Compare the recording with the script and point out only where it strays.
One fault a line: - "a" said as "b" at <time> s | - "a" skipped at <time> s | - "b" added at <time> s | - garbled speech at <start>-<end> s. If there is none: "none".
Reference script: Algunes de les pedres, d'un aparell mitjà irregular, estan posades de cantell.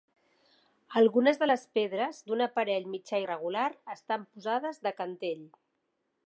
none